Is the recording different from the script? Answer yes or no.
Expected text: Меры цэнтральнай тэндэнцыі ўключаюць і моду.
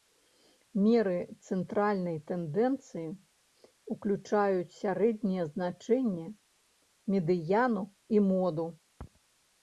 yes